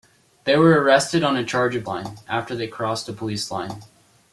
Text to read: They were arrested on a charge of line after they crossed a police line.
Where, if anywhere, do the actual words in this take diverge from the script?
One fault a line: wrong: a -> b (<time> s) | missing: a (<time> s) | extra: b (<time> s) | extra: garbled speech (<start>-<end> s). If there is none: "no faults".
no faults